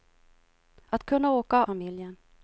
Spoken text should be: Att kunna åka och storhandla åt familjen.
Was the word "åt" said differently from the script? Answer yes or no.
yes